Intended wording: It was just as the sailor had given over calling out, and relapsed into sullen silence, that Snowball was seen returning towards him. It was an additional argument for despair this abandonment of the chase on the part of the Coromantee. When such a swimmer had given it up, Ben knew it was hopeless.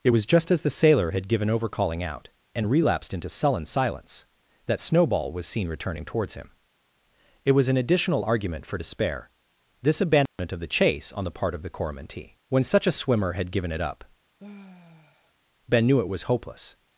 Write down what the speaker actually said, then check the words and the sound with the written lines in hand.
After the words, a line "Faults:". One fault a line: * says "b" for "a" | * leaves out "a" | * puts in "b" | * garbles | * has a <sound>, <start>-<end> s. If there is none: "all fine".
It was just as the sailor had given over calling out, and relapsed into sullen silence, that Snowball was seen returning towards him. It was an additional argument for despair this abandonment of the chase on the part of the Coromantee. When such a swimmer had given it up, Ben knew it was hopeless.
Faults:
* has a dropout, 10.3-10.4 s
* has a sigh, 14.4-15.3 s